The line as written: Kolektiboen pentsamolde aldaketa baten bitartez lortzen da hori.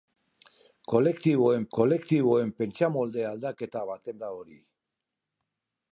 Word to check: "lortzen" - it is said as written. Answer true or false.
false